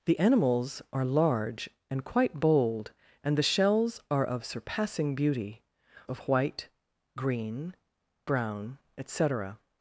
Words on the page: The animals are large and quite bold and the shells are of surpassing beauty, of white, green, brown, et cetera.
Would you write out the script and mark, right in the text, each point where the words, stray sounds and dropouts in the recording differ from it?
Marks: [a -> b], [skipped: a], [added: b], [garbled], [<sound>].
The animals are large and quite bold and the shells are of surpassing beauty, of white, green, brown, et cetera.